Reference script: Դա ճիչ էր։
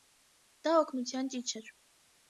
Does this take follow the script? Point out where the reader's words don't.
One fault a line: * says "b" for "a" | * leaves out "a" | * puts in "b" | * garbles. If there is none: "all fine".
* puts in "օգնության"